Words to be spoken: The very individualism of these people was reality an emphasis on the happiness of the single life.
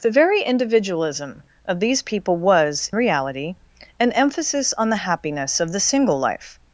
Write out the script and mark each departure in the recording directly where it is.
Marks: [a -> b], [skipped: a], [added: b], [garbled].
The very individualism of these people was reality an emphasis on the happiness of the single life.